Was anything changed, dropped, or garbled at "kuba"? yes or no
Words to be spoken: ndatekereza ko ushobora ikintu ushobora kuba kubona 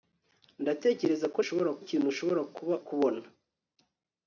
no